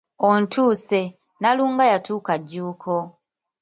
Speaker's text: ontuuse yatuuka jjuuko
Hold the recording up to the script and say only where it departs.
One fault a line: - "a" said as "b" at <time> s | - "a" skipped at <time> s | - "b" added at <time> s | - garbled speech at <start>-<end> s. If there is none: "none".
- "nnalunga" added at 1.4 s